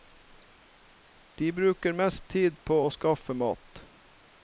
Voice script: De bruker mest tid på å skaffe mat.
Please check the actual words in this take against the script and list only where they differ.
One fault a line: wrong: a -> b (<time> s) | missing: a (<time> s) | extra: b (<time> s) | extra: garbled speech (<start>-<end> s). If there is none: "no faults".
no faults